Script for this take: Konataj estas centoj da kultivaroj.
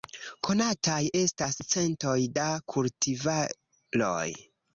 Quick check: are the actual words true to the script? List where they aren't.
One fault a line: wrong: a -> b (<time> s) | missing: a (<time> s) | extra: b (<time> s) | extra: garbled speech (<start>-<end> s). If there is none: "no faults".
no faults